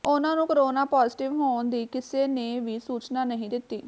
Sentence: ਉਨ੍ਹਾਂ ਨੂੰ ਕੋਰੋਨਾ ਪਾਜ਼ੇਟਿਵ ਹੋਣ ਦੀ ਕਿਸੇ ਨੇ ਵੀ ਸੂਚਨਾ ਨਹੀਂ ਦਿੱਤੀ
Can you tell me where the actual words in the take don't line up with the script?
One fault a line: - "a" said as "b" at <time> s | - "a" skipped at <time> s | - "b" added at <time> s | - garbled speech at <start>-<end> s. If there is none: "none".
none